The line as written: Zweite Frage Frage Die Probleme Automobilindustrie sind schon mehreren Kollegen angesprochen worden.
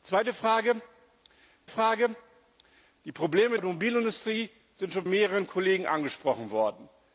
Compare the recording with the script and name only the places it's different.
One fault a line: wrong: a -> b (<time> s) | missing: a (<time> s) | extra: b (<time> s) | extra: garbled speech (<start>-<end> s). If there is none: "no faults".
no faults